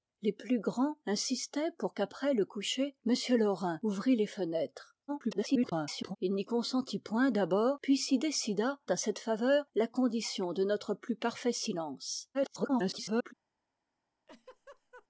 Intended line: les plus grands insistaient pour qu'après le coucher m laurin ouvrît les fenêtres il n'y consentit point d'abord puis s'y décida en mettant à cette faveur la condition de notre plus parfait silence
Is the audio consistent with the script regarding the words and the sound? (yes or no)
no